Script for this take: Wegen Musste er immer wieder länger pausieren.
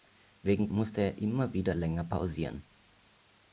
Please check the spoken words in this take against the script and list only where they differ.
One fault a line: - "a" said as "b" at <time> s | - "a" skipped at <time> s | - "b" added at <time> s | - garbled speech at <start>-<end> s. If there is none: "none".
none